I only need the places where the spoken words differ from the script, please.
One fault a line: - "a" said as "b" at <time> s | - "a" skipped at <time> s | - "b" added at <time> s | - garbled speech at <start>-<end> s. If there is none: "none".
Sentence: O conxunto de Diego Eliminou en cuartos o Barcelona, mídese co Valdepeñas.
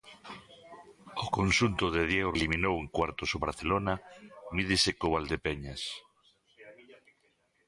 none